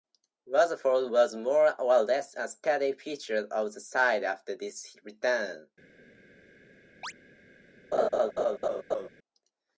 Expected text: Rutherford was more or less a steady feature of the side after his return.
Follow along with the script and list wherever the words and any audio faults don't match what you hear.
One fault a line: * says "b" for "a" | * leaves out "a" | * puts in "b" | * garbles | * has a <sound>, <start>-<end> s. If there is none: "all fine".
* has a chirp, 7.0-7.1 s
* has a laugh, 7.9-9.1 s